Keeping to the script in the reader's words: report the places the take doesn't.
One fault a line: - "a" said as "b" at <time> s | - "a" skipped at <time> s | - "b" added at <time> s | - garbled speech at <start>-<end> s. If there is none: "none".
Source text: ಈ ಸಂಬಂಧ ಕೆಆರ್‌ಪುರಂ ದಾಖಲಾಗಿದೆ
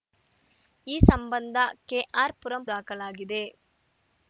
none